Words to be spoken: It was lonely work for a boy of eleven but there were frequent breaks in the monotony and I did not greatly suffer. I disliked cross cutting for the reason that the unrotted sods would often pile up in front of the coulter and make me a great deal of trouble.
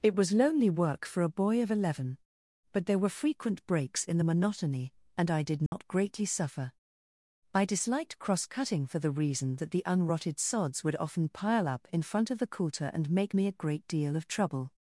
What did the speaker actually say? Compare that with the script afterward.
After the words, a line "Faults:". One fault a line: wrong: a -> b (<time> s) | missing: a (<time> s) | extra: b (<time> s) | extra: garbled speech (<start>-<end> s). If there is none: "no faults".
It was lonely work for a boy of eleven but there were frequent breaks in the monotony and I did not greatly suffer. I disliked cross cutting for the reason that the unrotted sods would often pile up in front of the coulter and make me a great deal of trouble.
Faults:
no faults